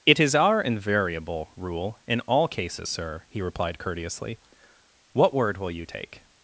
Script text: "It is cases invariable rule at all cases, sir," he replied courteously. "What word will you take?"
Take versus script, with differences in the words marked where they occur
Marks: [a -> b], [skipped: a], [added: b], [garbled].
"It is [cases -> our] invariable rule [at -> in] all cases, sir," he replied courteously. "What word will you take?"